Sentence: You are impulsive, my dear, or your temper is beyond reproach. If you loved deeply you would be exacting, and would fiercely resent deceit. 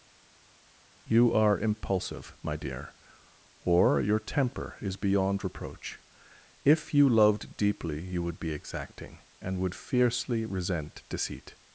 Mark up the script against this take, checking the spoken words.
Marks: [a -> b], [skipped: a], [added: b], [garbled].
You are impulsive, my dear, or your temper is beyond reproach. If you loved deeply you would be exacting, and would fiercely resent deceit.